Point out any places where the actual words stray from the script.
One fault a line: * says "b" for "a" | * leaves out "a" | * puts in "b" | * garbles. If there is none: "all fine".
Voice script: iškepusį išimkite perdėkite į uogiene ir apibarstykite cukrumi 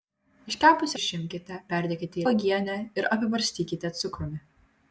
all fine